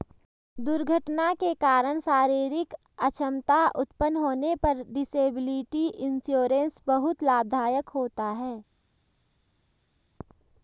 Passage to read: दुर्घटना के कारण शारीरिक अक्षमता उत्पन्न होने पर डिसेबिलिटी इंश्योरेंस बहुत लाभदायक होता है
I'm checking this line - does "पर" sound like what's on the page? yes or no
yes